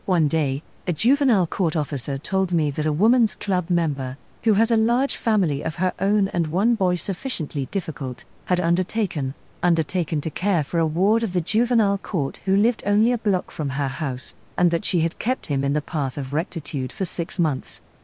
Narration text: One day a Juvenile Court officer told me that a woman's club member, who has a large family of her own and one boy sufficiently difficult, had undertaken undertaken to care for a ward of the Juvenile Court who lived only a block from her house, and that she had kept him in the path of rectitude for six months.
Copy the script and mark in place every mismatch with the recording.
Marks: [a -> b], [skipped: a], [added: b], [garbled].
One day a Juvenile Court officer told me that a woman's club member, who has a large family of her own and one boy sufficiently difficult, had undertaken undertaken to care for a ward of the Juvenile Court who lived only a block from her house, and that she had kept him in the path of rectitude for six months.